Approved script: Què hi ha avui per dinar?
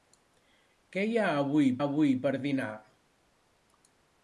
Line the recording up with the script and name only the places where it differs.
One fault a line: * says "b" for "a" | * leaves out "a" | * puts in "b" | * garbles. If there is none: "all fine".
* puts in "avui"